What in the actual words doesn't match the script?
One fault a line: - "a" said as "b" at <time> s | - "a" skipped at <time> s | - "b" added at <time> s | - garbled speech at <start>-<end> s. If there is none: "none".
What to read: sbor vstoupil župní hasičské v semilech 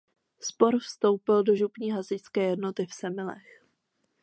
- "do" added at 1.4 s
- "jednoty" added at 2.4 s